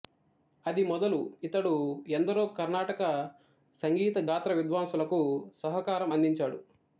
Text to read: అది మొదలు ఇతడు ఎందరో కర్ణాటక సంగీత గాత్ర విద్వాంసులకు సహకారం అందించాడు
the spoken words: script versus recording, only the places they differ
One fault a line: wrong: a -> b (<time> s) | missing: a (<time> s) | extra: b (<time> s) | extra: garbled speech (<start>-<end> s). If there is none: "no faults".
no faults